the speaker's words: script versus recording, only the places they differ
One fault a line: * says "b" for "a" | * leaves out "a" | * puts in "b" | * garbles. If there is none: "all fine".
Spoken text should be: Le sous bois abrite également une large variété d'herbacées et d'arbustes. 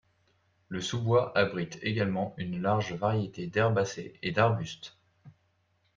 all fine